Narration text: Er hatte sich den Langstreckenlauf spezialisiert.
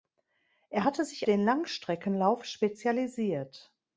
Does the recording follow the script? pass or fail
pass